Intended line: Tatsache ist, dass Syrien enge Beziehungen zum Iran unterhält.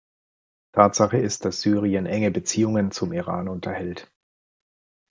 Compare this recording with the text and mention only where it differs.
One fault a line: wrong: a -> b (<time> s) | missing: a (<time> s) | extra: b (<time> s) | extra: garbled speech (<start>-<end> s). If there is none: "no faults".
no faults